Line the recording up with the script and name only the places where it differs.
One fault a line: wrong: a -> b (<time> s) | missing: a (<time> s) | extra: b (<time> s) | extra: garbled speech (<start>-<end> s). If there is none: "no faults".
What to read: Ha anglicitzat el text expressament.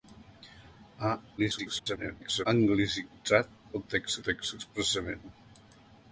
extra: garbled speech (1.4-2.5 s)
extra: text (4.3 s)